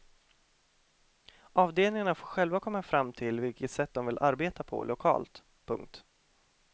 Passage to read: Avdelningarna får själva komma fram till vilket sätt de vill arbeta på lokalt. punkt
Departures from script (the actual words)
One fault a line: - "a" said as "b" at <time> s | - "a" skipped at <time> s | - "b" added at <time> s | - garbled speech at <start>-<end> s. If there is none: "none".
none